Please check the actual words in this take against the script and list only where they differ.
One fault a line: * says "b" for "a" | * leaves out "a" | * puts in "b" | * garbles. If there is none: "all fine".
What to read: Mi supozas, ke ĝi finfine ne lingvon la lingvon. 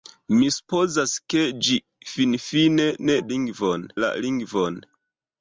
all fine